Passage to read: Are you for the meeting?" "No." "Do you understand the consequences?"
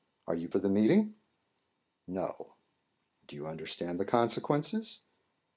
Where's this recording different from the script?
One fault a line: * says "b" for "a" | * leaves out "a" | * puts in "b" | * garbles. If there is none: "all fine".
all fine